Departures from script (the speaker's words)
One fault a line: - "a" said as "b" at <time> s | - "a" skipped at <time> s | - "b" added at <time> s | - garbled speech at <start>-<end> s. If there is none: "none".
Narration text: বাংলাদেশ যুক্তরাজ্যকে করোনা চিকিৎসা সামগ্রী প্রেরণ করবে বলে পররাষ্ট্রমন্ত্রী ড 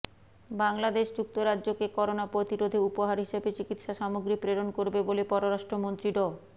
- "প্রতিরোধে উপহার হিসেবে" added at 2.3 s